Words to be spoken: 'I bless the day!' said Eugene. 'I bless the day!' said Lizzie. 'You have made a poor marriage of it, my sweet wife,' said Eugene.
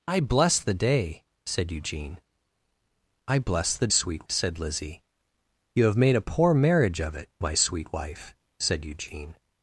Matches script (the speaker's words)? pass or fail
fail